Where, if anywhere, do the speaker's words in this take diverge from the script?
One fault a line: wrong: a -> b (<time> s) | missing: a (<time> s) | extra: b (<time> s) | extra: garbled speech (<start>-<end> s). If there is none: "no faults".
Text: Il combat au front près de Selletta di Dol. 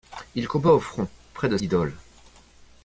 missing: Selletta (1.6 s)